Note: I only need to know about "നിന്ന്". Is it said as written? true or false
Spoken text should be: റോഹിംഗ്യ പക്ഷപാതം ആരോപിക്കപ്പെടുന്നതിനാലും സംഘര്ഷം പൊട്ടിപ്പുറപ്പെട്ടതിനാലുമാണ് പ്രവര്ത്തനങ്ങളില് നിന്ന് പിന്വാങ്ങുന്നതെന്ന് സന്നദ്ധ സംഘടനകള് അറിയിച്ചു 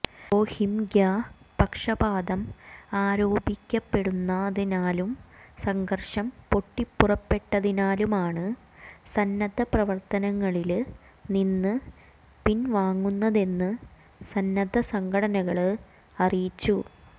true